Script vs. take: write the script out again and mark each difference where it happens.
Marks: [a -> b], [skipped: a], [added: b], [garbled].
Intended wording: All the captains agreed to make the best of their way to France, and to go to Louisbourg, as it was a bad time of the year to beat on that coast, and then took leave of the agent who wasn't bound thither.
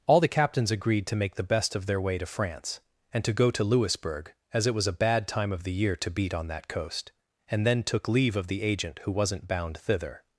All the captains agreed to make the best of their way to France, and to go to Louisbourg, as it was a bad time of the year to beat on that coast, and then took leave of the agent who wasn't bound thither.